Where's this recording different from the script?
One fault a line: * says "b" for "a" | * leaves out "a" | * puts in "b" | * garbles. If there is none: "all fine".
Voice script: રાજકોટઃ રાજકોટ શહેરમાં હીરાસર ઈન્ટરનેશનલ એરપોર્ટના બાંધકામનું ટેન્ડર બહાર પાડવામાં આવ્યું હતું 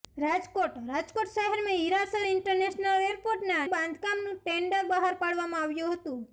all fine